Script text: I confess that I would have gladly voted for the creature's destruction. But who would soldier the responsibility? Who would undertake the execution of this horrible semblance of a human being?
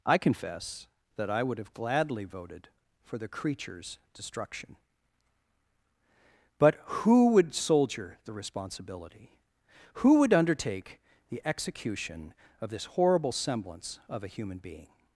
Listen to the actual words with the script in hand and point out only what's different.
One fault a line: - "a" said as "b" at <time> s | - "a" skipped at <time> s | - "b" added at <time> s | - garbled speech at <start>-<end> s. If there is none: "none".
none